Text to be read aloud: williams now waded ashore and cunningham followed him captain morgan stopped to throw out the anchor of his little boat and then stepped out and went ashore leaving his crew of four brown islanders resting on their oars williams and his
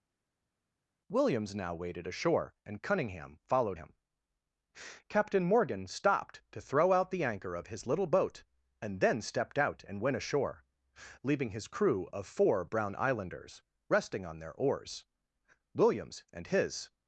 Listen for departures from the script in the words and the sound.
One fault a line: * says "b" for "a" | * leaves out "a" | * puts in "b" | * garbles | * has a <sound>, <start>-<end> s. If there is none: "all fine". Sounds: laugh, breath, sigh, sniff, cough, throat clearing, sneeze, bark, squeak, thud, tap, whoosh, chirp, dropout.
all fine